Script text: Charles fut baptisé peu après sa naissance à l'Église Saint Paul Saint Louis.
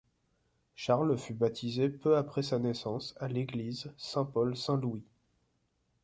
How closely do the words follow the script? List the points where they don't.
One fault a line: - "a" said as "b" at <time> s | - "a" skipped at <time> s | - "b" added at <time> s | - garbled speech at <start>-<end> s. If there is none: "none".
none